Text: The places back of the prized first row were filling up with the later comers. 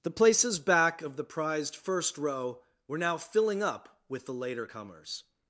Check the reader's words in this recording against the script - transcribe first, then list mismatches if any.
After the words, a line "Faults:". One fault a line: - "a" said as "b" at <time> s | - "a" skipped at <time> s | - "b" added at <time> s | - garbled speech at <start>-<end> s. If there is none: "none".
The places back of the prized first row were now filling up with the later comers.
Faults:
- "now" added at 3.0 s